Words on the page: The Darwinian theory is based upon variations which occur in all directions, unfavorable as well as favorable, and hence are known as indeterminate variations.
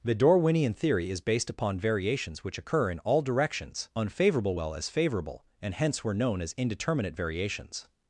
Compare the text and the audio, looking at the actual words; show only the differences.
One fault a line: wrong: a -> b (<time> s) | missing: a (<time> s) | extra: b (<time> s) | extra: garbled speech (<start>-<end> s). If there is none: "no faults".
missing: as (4.5 s)
wrong: are -> were (6.0 s)